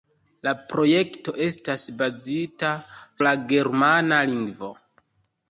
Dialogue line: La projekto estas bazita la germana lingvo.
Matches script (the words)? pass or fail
pass